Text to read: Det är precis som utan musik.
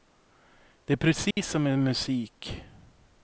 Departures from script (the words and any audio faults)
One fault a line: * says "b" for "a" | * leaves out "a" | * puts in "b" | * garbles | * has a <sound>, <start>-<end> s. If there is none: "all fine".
* has a dropout, 1.3-1.4 s
* says "med" for "utan"